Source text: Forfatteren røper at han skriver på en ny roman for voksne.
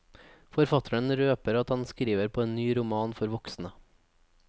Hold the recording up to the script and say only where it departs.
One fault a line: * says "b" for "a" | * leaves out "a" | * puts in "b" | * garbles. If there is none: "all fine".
all fine